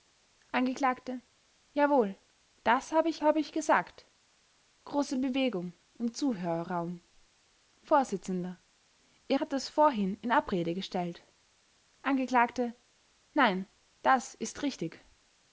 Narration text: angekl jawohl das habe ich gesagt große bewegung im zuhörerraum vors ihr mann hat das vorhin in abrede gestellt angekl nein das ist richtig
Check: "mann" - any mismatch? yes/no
yes